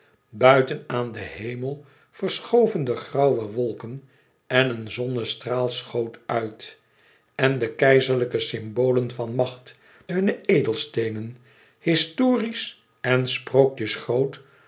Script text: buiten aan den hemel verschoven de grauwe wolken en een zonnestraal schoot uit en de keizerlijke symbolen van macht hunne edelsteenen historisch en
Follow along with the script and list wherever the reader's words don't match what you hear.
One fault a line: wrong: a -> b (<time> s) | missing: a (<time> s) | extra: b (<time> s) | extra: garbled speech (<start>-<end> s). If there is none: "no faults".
no faults